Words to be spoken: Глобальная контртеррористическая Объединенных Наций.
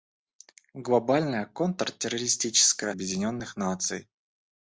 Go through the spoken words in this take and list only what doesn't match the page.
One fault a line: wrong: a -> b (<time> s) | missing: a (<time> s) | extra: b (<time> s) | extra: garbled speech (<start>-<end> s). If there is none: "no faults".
no faults